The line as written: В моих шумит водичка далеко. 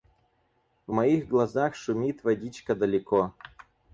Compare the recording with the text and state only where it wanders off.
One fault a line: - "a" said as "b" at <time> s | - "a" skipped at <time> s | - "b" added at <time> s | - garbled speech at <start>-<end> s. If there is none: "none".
- "глазах" added at 1.3 s